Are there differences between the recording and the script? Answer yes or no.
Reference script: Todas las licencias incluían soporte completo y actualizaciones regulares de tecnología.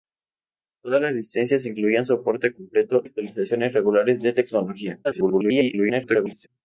yes